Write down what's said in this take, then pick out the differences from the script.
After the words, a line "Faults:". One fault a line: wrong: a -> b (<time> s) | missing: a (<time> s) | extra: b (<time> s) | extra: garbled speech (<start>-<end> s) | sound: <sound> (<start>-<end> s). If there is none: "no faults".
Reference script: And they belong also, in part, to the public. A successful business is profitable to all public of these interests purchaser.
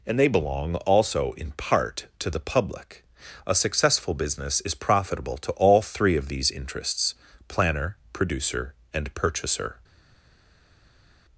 And they belong also, in part, to the public. A successful business is profitable to all three of these interests planner, producer, and purchaser.
Faults:
wrong: public -> three (5.8 s)
extra: planner producer and (7.5 s)